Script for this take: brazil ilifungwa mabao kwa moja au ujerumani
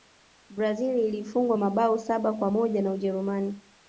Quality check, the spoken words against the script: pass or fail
fail